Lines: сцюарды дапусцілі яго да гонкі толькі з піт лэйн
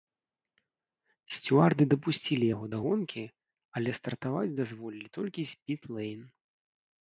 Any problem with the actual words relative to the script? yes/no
yes